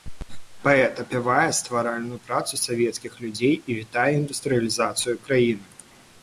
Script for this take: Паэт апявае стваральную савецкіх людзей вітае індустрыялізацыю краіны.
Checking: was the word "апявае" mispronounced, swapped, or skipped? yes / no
no